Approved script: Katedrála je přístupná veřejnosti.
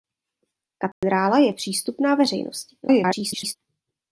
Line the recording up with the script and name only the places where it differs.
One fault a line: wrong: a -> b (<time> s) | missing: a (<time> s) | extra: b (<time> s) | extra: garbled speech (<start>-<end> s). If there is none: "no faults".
extra: garbled speech (2.8-3.6 s)